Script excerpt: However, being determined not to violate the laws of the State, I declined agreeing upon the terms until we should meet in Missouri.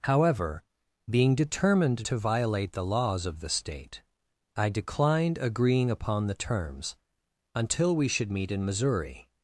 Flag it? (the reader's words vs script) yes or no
yes